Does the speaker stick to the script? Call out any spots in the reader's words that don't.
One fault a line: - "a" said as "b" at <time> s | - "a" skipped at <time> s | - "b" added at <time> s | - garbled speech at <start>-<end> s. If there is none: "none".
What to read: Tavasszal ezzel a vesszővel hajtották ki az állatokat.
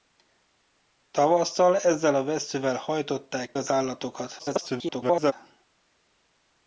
- "ki" skipped at 3.5 s
- garbled speech at 4.4-5.3 s